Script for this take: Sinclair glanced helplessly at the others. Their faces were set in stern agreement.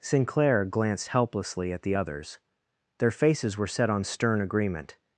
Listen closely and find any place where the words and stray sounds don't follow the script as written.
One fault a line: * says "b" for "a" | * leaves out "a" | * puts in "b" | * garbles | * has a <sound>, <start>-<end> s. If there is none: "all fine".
* says "on" for "in"